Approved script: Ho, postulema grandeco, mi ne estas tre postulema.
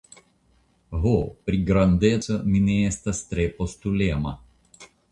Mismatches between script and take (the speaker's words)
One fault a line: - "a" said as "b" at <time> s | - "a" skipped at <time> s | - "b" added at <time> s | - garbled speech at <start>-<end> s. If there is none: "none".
- "postulema" said as "pri" at 1.5 s